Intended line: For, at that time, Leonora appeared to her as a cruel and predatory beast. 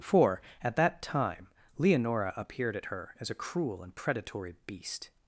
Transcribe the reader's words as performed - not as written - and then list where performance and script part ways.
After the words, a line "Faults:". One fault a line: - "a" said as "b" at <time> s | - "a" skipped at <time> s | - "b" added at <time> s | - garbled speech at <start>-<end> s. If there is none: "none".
For, at that time, Leonora appeared at her as a cruel and predatory beast.
Faults:
- "to" said as "at" at 2.8 s